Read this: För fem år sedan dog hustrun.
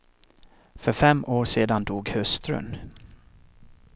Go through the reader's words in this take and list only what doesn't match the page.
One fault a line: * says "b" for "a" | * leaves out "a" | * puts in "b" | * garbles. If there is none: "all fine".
all fine